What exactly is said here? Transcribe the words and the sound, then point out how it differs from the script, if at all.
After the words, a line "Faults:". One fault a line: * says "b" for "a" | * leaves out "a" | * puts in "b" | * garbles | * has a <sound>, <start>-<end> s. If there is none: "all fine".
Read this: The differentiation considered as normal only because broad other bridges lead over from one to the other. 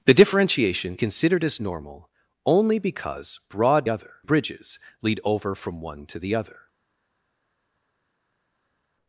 The differentiation considered as normal only because broad other bridges lead over from one to the other.
Faults:
all fine